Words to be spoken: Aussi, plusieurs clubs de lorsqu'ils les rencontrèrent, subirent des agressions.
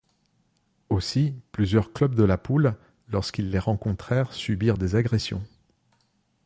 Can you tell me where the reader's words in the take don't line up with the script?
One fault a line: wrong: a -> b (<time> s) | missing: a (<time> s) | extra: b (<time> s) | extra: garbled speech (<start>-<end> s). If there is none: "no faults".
extra: la poule (2.2 s)